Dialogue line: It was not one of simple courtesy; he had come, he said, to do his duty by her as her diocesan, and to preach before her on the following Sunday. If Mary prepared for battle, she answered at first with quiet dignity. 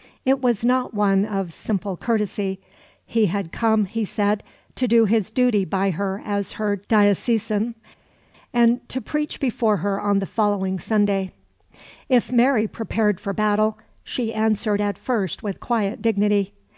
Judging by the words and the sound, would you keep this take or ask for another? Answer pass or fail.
pass